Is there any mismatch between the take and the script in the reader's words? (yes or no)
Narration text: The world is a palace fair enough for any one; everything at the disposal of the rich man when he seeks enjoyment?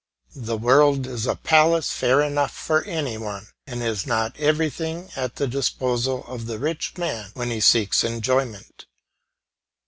yes